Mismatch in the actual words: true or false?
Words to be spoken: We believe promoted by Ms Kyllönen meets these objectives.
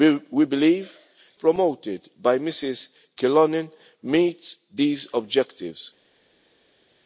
false